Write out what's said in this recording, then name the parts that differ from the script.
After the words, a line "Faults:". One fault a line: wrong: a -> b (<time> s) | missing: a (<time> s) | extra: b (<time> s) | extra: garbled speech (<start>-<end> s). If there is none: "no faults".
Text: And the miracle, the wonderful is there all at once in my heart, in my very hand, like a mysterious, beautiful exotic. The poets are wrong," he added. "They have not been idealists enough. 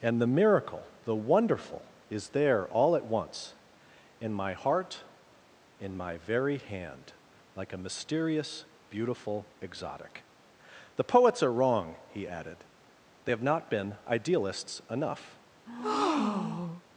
And the miracle, the wonderful is there all at once in my heart, in my very hand, like a mysterious, beautiful exotic. The poets are wrong," he added. "They have not been idealists enough.
Faults:
no faults